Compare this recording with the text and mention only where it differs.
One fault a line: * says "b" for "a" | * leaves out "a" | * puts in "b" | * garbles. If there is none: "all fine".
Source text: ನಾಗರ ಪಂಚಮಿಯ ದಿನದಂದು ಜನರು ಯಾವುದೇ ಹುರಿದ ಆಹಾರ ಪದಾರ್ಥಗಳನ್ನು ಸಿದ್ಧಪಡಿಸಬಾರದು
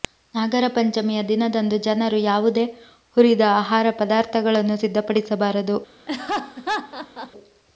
all fine